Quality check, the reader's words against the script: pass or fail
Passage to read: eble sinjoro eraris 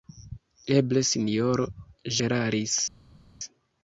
pass